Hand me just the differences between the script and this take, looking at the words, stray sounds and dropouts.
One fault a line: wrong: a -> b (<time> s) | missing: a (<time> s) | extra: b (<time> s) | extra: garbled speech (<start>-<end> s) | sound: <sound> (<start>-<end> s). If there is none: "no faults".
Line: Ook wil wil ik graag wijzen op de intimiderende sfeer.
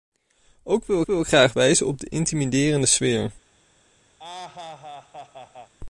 sound: laugh (4.2-5.7 s)